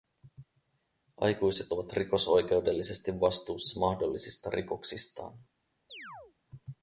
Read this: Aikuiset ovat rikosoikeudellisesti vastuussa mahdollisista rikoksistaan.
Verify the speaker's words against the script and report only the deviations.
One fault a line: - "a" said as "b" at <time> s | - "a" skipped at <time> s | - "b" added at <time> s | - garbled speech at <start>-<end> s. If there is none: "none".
none